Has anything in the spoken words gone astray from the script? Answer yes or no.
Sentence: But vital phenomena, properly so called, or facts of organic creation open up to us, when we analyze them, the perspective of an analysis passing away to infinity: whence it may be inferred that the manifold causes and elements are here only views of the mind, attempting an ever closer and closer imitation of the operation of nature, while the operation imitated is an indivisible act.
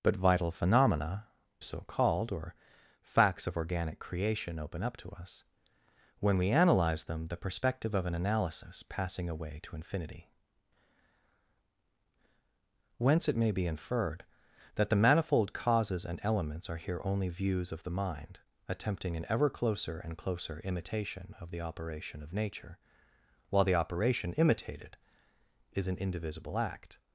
yes